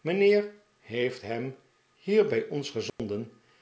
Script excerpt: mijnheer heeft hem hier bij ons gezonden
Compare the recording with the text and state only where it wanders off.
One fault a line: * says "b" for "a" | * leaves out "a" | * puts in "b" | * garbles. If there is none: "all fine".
all fine